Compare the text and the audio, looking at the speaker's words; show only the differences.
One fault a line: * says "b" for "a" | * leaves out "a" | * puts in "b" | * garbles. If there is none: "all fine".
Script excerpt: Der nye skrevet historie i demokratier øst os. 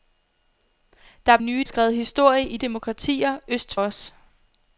all fine